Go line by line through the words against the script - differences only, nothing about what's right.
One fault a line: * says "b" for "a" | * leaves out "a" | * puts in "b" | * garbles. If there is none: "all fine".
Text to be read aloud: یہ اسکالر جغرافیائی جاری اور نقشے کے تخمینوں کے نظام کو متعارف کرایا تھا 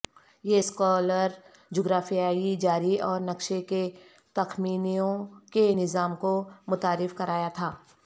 all fine